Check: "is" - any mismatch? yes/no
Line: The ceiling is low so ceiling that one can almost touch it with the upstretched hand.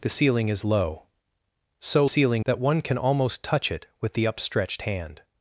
no